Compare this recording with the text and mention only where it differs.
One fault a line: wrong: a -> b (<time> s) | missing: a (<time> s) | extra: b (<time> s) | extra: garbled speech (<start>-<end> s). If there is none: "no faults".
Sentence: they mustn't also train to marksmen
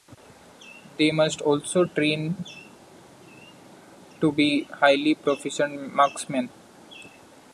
wrong: mustn't -> must (1.1 s)
extra: be highly proficient (4.3 s)